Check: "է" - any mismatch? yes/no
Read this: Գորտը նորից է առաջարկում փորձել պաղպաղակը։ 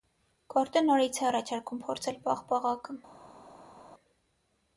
no